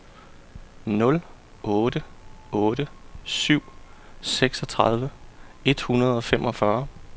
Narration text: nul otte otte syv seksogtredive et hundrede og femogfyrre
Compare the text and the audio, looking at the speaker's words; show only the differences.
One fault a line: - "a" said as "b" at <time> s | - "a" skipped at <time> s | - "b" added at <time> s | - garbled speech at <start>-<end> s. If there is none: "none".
none